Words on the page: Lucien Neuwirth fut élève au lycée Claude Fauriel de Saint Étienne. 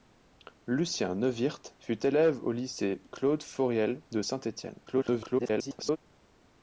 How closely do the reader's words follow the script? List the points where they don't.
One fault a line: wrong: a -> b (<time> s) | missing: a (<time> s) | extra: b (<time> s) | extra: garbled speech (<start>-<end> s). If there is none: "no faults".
extra: garbled speech (4.9-6.0 s)